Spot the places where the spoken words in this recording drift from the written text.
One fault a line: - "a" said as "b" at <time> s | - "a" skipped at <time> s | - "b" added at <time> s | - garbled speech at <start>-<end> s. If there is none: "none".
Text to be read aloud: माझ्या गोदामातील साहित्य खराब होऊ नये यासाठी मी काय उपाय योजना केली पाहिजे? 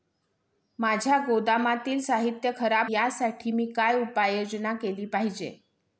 - "होऊ नये" skipped at 2.9 s